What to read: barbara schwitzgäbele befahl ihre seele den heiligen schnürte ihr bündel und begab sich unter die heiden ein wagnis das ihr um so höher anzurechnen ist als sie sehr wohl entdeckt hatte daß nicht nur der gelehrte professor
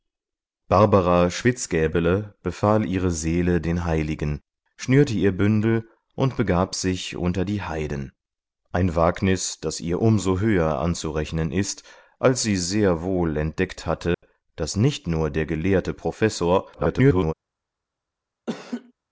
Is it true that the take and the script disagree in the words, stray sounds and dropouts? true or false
true